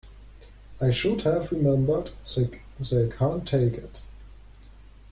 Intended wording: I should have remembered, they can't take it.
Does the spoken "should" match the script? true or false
true